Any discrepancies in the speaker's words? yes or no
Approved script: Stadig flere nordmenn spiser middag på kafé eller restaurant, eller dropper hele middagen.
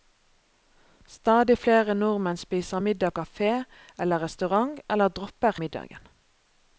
yes